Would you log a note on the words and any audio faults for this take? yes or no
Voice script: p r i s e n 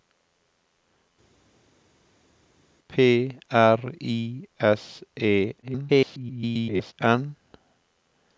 yes